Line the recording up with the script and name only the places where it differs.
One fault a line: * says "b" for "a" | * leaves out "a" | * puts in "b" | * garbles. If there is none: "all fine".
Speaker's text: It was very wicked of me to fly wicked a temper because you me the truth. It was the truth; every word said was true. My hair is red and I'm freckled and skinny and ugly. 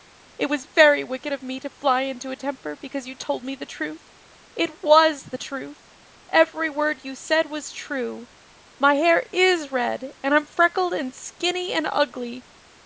* says "into" for "wicked"
* puts in "told"
* puts in "you"